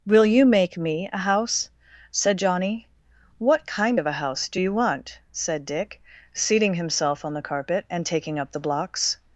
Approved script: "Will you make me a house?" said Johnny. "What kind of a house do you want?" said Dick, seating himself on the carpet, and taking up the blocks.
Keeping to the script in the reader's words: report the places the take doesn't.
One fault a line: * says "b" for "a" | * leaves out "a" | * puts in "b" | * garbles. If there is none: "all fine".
all fine